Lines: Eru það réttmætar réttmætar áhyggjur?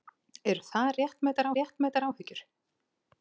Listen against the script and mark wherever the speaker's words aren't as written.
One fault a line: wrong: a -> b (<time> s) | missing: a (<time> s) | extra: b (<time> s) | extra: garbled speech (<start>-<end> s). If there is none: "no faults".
no faults